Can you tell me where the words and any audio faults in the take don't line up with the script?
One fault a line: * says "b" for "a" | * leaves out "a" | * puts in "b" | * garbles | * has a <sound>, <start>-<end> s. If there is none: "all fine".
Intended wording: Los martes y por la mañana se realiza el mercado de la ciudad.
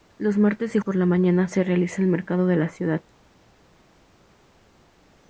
all fine